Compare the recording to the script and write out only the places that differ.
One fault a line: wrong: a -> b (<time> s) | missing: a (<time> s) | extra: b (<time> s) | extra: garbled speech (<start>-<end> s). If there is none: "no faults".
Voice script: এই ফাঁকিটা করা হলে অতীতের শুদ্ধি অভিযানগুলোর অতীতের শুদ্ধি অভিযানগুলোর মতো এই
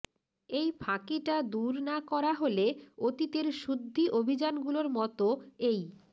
extra: দূর না (1.5 s)
missing: অতীতের শুদ্ধি অভিযানগুলোর (4.9 s)